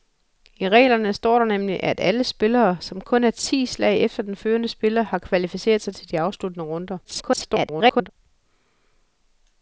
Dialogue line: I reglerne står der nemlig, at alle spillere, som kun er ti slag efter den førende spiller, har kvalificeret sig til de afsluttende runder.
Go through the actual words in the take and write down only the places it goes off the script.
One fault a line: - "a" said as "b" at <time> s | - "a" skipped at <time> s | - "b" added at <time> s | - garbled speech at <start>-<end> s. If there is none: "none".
- garbled speech at 7.0-8.1 s